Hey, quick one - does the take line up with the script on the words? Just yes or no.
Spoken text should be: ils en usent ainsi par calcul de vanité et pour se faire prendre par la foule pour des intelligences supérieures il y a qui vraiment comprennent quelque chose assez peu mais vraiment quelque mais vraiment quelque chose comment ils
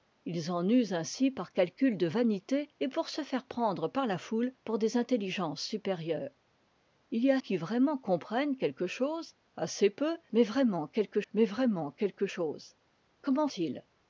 yes